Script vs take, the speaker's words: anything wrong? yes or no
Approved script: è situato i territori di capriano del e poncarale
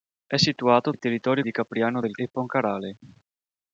no